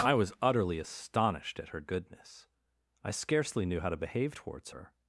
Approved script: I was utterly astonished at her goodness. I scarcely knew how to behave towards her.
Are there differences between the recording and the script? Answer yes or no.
no